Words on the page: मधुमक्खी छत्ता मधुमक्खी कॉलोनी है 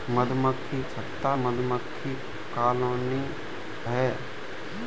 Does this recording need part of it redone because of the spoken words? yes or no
no